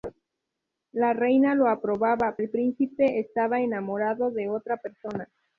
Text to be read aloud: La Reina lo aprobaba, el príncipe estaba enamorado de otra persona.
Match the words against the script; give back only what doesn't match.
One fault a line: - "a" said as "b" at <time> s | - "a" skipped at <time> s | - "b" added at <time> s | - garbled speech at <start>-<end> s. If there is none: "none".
none